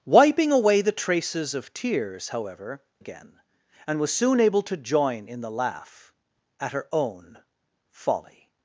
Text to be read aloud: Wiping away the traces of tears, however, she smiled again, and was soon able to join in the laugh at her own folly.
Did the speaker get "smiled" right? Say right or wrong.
wrong